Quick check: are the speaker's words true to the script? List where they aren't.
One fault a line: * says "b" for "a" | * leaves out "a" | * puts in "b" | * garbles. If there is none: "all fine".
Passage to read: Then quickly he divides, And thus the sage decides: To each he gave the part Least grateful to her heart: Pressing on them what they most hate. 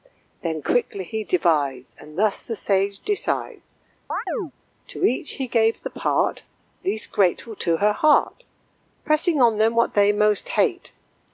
all fine